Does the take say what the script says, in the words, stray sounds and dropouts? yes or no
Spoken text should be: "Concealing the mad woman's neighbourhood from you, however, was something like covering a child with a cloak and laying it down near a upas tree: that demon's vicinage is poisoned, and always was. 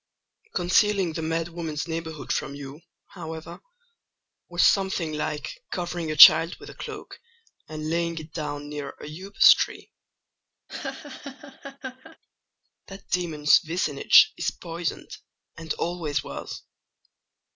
no